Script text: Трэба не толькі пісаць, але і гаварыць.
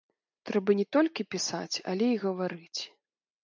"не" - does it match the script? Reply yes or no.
yes